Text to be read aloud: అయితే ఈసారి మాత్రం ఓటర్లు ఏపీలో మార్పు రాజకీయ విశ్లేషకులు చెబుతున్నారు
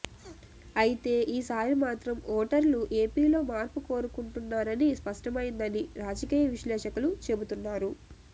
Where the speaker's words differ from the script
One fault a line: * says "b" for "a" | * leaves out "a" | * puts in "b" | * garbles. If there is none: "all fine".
* puts in "కోరుకుంటున్నారని స్పష్టమైందని"